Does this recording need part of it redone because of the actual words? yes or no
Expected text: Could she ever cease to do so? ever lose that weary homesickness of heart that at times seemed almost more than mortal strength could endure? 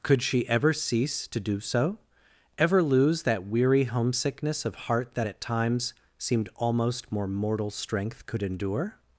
yes